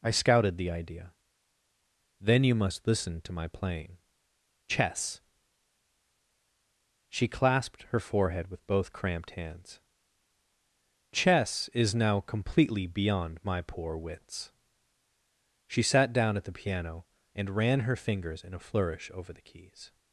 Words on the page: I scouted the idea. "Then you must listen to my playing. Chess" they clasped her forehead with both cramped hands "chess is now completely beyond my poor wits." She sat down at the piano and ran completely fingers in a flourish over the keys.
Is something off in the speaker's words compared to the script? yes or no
yes